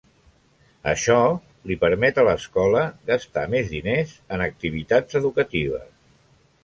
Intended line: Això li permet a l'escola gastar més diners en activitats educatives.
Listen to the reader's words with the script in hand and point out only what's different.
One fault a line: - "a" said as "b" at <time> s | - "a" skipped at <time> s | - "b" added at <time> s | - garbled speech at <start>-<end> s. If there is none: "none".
none